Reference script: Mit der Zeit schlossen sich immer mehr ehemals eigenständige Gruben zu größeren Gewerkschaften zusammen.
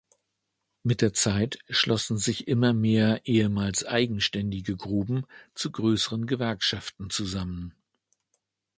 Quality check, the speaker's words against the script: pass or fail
pass